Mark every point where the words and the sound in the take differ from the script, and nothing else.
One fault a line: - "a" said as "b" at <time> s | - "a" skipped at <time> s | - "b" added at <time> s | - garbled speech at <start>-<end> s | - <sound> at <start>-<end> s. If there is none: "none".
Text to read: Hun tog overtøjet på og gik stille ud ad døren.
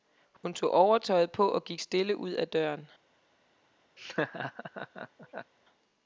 - dropout at 0.4-0.4 s
- laugh at 4.0-5.5 s